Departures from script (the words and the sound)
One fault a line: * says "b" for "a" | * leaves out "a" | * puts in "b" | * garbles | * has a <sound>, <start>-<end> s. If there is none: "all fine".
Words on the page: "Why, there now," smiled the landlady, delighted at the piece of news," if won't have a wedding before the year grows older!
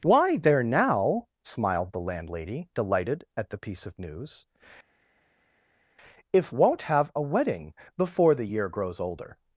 all fine